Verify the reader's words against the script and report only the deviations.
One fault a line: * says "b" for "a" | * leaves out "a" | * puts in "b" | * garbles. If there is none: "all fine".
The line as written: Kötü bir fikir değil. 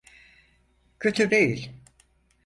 * leaves out "bir fikir"